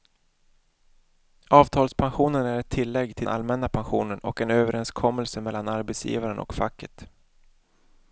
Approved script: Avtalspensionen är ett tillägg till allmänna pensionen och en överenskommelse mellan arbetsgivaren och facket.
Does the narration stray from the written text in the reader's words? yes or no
no